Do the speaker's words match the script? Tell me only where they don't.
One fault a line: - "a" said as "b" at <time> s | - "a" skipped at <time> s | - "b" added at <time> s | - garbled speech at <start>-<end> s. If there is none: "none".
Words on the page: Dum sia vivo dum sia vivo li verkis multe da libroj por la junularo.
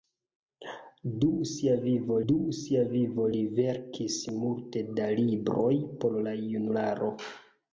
none